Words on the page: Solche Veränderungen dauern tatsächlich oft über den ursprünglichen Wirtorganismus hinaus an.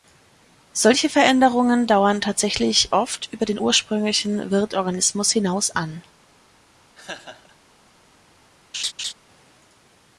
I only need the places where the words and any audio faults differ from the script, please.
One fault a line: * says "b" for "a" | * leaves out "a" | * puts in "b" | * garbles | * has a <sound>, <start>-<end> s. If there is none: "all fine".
* has a laugh, 6.9-7.6 s
* has a laugh, 8.7-9.1 s